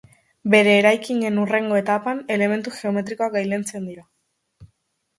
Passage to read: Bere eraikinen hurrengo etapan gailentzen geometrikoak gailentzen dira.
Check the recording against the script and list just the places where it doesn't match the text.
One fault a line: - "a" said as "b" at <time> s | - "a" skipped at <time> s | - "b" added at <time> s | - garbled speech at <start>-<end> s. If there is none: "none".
- "gailentzen" said as "elementu" at 2.4 s